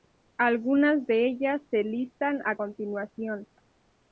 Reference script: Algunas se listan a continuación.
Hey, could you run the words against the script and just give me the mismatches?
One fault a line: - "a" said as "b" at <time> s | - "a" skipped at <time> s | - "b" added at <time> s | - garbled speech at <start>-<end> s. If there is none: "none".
- "de ellas" added at 1.1 s